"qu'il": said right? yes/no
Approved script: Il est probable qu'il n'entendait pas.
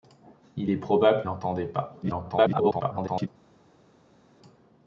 no